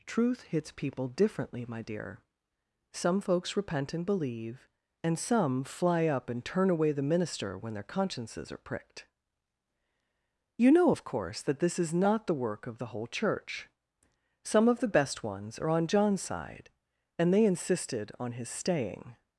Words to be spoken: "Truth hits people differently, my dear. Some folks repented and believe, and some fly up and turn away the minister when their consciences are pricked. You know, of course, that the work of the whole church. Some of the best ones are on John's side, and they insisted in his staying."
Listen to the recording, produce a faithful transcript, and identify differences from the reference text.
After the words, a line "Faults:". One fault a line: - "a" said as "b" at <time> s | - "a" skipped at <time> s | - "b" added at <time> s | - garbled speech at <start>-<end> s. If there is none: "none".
"Truth hits people differently, my dear. Some folks repent and believe, and some fly up and turn away the minister when their consciences are pricked. You know, of course, that this is not the work of the whole church. Some of the best ones are on John's side, and they insisted on his staying."
Faults:
- "repented" said as "repent" at 3.6 s
- "this is not" added at 11.6 s
- "in" said as "on" at 18.2 s